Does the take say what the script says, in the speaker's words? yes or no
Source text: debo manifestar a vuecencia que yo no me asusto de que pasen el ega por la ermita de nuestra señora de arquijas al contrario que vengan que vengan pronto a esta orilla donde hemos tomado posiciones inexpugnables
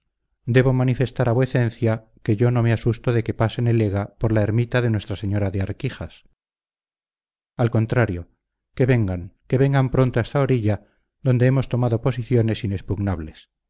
yes